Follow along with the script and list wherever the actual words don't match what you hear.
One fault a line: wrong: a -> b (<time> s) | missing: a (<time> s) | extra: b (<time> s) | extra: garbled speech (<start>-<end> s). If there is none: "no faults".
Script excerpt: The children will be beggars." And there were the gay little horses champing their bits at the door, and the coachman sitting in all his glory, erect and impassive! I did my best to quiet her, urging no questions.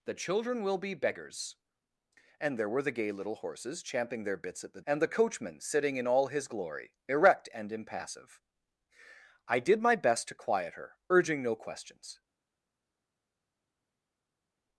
missing: door (4.8 s)